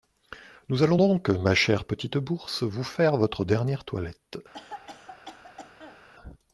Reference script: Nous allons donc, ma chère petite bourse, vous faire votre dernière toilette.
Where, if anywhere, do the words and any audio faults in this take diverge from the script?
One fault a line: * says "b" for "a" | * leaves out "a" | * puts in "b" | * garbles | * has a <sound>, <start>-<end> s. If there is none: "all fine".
* has a cough, 4.5-6.0 s